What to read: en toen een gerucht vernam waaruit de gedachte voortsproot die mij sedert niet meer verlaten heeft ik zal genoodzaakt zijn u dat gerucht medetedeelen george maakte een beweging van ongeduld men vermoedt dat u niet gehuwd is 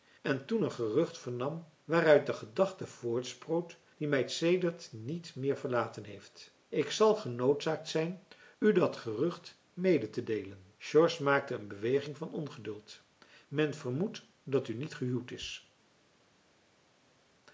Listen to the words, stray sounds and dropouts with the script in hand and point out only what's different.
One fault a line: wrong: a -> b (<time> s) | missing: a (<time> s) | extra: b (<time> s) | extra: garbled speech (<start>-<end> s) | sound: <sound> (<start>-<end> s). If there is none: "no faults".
no faults